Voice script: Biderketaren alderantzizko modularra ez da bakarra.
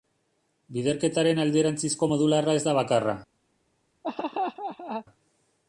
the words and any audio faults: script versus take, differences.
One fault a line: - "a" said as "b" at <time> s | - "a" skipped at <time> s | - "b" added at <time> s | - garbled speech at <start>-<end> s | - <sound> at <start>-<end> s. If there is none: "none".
- laugh at 4.0-5.1 s